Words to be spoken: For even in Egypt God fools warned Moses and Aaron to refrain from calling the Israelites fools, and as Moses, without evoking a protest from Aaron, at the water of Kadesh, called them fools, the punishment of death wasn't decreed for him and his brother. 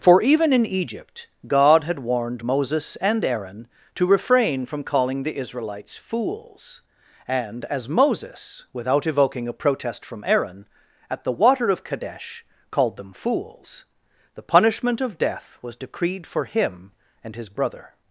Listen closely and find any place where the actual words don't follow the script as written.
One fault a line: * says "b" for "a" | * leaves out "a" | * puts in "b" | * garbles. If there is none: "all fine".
* says "had" for "fools"
* says "was" for "wasn't"